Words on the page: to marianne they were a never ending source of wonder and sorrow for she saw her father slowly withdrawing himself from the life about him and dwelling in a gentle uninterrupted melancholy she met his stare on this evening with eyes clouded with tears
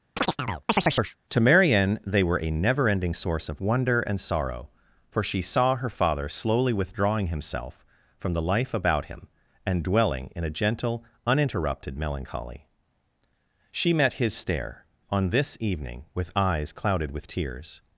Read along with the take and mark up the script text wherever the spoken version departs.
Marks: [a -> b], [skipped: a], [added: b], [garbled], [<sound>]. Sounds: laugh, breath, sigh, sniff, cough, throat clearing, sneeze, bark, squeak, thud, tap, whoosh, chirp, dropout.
[chirp] to marianne they were a never ending source of wonder and sorrow for she saw her father slowly withdrawing himself from the life about him and dwelling in a gentle uninterrupted melancholy she met his stare on this evening with eyes clouded with tears